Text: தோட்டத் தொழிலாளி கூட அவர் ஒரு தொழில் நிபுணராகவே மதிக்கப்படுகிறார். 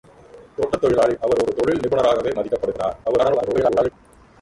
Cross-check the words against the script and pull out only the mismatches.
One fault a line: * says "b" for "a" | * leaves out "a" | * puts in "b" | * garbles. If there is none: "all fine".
* leaves out "கூட"
* garbles